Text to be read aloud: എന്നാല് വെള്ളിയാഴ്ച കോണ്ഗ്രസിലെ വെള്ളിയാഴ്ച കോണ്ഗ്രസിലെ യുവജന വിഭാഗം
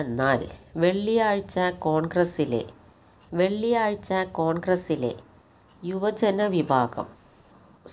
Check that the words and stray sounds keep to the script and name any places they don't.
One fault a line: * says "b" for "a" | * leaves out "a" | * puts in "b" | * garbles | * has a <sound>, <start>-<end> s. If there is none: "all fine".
all fine